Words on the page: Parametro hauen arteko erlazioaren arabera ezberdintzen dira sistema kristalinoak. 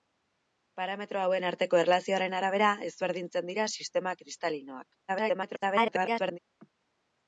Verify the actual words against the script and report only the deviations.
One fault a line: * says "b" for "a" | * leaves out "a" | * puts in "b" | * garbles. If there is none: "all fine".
* garbles